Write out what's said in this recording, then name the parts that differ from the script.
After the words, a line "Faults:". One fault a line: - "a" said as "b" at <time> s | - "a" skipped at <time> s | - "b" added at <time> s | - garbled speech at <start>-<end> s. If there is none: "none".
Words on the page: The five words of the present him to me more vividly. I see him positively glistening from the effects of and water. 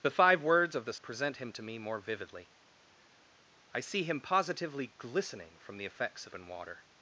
The five words of the present him to me more vividly. I see him positively glistening from the effects of and water.
Faults:
none